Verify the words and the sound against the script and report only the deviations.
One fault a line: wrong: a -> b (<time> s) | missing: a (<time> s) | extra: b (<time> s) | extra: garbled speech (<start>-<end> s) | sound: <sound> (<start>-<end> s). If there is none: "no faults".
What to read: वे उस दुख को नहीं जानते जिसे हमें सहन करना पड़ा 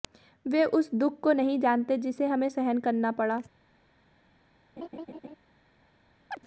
sound: laugh (4.8-5.4 s)
sound: chirp (6.3-6.4 s)